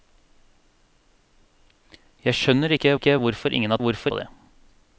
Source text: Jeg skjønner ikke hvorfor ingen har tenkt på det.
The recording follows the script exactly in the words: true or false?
false